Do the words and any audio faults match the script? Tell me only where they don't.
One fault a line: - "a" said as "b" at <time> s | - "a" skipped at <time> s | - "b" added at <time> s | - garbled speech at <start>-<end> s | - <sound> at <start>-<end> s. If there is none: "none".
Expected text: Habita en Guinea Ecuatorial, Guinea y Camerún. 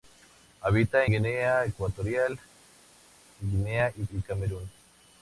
- "en" skipped at 1.1 s
- "y" added at 4.1 s